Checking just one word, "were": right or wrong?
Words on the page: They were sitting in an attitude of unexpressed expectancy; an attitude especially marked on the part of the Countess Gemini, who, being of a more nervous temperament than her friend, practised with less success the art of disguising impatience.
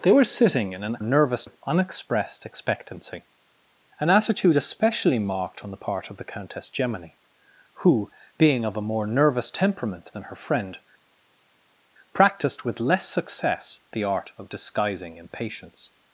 right